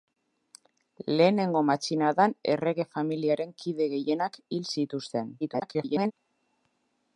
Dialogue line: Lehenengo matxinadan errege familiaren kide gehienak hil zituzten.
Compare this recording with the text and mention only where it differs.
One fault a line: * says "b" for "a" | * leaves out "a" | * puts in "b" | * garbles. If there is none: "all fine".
* garbles